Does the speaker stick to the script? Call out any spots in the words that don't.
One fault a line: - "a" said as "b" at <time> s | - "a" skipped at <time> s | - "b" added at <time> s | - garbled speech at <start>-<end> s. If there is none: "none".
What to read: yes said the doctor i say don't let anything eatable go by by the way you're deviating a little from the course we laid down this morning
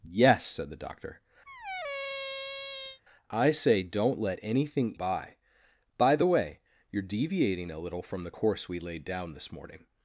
- "eatable go" skipped at 4.9 s